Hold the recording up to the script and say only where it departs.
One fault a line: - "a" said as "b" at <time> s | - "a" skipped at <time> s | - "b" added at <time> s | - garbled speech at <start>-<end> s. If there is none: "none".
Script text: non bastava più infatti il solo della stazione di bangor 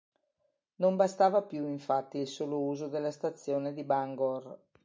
- "uso" added at 2.6 s